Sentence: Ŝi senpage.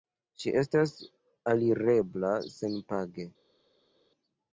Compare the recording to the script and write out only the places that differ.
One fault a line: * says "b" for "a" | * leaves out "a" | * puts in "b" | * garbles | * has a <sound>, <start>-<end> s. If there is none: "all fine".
* puts in "estas alirebla"